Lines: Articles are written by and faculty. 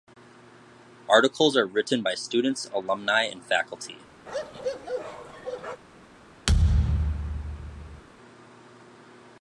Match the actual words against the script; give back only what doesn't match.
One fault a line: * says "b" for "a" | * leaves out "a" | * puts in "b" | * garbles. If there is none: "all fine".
* puts in "students alumni"